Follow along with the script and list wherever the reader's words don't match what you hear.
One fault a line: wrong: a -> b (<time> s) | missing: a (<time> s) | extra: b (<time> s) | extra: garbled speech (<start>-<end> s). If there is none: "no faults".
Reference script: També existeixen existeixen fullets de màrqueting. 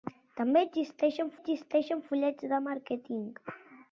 no faults